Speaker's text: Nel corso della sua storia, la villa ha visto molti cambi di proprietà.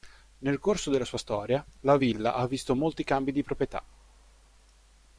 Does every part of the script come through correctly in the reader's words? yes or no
yes